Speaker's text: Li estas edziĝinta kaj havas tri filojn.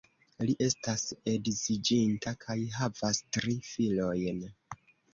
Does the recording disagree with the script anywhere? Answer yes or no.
no